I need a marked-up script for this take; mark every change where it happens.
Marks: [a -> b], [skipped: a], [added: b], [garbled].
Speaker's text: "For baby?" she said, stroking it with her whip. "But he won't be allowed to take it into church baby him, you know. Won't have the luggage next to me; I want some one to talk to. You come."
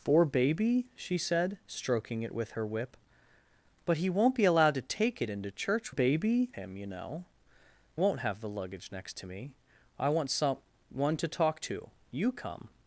"For baby?" she said, stroking it with her whip. "But he won't be allowed to take it into church baby him, you know. Won't have the luggage next to me; I want some one to talk to. You come."